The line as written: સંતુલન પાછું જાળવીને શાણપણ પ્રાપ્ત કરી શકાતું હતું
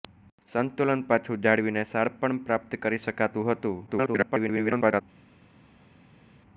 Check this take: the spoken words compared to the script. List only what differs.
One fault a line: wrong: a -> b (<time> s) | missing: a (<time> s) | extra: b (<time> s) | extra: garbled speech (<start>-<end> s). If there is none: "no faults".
extra: garbled speech (3.9-5.0 s)